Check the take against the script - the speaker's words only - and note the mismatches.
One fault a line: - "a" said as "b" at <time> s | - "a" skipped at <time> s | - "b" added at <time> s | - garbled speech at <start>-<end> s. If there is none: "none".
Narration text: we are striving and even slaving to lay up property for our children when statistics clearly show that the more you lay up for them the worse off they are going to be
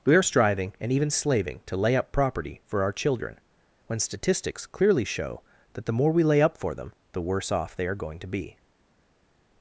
- "you" said as "we" at 6.1 s